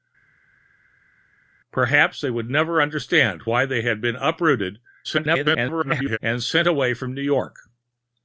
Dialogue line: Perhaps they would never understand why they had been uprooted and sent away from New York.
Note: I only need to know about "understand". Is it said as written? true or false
true